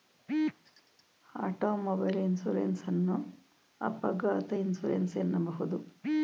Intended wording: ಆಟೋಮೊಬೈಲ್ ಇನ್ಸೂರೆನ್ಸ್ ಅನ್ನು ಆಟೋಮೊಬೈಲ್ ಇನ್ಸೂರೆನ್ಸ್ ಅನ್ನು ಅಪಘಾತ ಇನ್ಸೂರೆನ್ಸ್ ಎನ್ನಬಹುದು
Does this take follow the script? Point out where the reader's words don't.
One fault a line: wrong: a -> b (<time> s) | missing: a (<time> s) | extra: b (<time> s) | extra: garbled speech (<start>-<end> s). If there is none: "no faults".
missing: ಆಟೋಮೊಬೈಲ್ ಇನ್ಸೂರೆನ್ಸ್ ಅನ್ನು (3.2 s)